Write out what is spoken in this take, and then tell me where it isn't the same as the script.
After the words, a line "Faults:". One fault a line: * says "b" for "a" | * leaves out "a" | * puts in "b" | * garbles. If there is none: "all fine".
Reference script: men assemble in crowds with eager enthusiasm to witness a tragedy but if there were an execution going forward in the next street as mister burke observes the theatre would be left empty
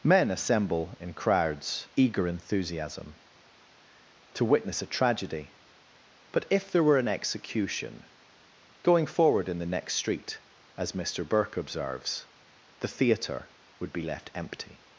men assemble in crowds eager enthusiasm to witness a tragedy but if there were an execution going forward in the next street as mister burke observes the theatre would be left empty
Faults:
* leaves out "with"